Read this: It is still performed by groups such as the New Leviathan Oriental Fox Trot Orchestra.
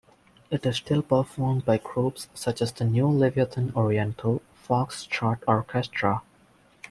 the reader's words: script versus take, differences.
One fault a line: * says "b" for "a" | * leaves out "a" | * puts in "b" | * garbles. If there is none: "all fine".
all fine